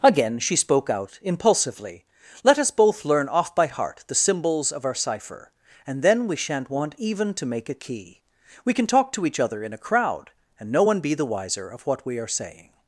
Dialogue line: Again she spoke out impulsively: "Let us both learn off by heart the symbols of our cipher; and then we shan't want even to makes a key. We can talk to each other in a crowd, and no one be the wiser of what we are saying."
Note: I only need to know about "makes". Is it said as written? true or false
false